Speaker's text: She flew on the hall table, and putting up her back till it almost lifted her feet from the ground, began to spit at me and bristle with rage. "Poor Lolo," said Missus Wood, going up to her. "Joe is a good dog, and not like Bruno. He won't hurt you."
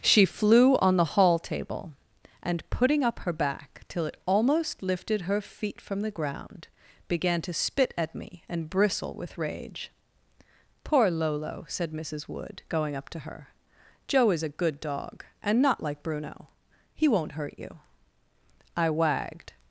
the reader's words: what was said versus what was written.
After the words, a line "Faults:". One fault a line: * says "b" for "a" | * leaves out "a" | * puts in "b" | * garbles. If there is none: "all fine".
She flew on the hall table, and putting up her back till it almost lifted her feet from the ground, began to spit at me and bristle with rage. "Poor Lolo," said Missus Wood, going up to her. "Joe is a good dog, and not like Bruno. He won't hurt you." I wagged
Faults:
* puts in "I wagged"